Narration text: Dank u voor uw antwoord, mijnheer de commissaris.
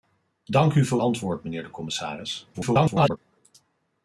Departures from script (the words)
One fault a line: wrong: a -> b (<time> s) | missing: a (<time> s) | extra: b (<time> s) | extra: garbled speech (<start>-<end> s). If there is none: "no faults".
missing: uw (1.0 s)
extra: garbled speech (2.5-3.2 s)